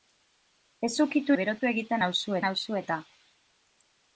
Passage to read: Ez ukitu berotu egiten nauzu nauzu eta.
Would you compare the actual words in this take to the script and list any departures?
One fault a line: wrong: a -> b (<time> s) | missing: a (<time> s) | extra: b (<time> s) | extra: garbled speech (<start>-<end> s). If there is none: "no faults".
no faults